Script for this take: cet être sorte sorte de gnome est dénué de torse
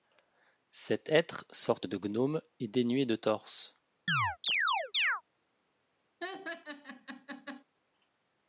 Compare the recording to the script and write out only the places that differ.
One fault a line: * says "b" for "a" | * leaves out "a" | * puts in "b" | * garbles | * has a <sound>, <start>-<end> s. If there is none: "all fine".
* leaves out "sorte"
* has a chirp, 4.1-5.2 s
* has a laugh, 6.2-7.6 s